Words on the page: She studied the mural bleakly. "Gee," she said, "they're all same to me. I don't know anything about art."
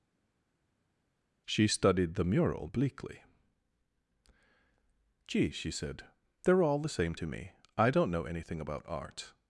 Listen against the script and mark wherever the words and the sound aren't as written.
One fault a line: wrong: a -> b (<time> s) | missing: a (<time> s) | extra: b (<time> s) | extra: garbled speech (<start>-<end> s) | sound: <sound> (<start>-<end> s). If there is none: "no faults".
extra: the (6.8 s)